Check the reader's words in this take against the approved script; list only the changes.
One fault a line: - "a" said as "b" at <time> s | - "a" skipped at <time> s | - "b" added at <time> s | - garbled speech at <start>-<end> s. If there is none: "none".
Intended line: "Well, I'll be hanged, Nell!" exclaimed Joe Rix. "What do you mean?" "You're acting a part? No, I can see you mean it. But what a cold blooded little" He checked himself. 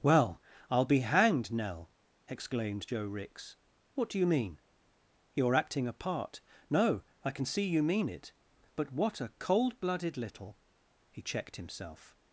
none